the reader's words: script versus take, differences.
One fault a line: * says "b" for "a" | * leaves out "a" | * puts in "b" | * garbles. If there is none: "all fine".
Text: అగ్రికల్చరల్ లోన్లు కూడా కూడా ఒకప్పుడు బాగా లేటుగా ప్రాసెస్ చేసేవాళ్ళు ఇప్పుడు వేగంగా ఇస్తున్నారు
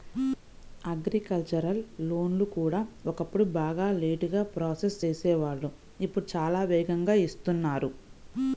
* leaves out "కూడా"
* puts in "చాలా"